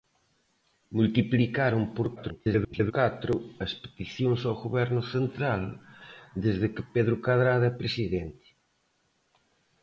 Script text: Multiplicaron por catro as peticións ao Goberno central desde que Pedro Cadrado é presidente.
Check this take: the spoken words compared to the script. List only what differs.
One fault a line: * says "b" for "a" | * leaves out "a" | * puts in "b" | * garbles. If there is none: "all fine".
* garbles